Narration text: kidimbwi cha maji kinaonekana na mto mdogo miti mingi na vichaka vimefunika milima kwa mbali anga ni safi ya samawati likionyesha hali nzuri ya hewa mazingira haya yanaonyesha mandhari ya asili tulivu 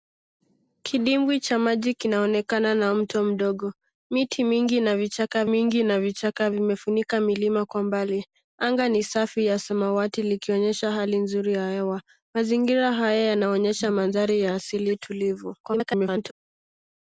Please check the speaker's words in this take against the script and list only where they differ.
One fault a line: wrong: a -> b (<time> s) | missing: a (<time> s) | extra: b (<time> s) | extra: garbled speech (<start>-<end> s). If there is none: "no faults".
extra: mingi na vichaka (5.4 s)
extra: garbled speech (15.6-16.3 s)